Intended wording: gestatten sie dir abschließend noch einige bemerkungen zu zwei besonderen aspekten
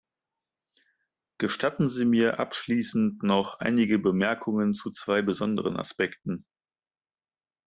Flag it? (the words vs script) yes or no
yes